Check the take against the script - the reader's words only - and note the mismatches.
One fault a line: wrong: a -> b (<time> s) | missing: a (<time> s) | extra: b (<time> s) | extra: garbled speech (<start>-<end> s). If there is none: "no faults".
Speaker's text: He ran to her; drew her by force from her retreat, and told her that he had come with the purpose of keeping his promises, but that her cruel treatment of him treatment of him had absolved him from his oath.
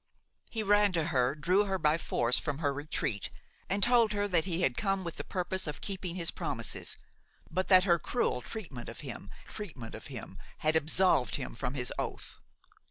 no faults